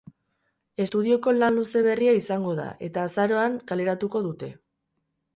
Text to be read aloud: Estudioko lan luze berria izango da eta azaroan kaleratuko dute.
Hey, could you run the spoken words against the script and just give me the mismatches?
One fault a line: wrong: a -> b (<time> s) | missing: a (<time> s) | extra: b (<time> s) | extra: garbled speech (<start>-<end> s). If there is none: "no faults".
no faults